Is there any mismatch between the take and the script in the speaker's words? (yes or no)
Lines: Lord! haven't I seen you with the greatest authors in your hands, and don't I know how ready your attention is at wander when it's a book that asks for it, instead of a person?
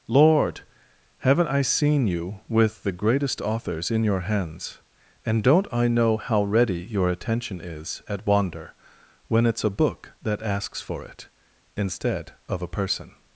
no